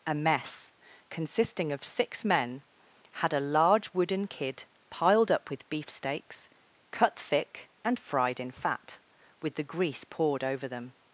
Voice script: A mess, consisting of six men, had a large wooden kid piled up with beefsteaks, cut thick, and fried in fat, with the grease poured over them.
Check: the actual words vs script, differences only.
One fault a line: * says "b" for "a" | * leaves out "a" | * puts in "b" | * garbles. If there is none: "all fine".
all fine